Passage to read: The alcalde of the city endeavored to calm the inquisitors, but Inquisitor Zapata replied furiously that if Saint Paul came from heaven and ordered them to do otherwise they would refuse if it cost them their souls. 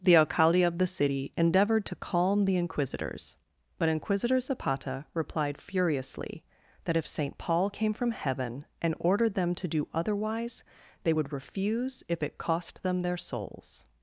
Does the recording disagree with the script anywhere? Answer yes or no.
no